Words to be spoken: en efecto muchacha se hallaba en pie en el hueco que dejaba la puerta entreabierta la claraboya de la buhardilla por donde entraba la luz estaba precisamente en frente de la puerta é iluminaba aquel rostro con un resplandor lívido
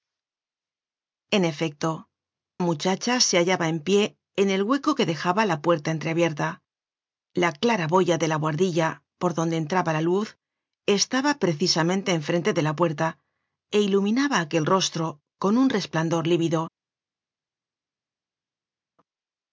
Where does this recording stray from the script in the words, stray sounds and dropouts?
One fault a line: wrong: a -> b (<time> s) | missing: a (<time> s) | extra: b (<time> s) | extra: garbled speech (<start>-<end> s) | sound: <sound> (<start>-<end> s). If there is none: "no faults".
no faults